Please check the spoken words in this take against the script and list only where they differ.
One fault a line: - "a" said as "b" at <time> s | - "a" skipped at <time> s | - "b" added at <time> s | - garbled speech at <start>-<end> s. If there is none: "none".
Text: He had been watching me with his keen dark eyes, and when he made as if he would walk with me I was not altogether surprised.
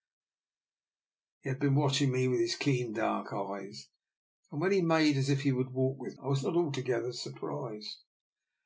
- "me" skipped at 6.2 s